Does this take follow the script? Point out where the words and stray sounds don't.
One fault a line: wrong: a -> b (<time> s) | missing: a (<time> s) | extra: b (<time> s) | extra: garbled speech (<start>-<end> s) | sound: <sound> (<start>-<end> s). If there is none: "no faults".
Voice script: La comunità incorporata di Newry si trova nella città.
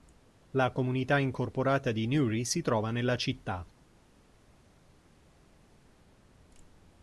no faults